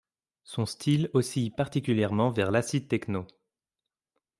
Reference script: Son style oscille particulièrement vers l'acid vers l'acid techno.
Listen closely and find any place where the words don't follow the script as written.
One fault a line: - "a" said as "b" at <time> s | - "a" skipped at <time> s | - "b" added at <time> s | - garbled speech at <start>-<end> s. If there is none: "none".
- "vers l'acid" skipped at 2.9 s